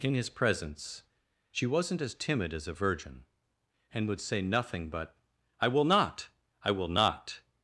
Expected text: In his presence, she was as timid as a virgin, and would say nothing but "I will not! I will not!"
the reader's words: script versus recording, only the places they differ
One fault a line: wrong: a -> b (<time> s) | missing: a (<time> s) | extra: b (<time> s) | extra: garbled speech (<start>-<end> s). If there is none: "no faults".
wrong: was -> wasn't (1.7 s)